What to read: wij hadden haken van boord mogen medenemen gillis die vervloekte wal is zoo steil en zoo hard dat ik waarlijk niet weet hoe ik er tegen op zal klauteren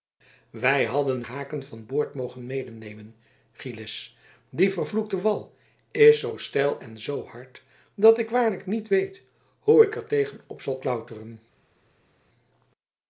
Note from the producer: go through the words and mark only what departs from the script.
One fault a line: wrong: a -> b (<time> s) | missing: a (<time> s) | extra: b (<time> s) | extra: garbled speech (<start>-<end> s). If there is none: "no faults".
no faults